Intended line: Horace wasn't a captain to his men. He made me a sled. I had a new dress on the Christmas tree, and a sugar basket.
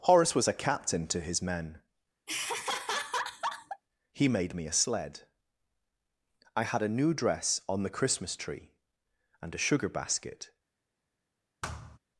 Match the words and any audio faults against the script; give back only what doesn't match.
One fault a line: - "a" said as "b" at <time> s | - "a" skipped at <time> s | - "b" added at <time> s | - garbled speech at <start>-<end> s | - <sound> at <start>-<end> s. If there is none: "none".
- "wasn't" said as "was" at 0.3 s
- laugh at 2.3-3.8 s
- thud at 11.6-12.0 s